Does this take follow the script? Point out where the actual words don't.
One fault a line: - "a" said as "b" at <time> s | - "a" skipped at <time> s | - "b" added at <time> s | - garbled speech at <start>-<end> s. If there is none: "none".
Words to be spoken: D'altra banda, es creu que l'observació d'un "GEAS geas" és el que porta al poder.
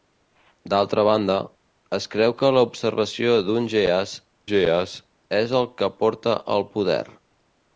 none